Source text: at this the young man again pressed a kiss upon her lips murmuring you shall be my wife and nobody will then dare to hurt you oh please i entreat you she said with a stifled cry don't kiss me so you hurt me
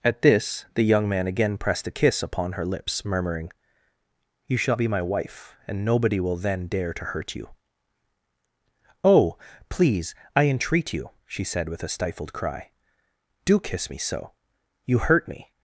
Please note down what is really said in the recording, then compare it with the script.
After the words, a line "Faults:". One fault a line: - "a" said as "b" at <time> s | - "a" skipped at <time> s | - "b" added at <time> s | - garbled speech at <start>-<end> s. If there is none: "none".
at this the young man again pressed a kiss upon her lips murmuring you shall be my wife and nobody will then dare to hurt you oh please i entreat you she said with a stifled cry do kiss me so you hurt me
Faults:
- "don't" said as "do" at 13.4 s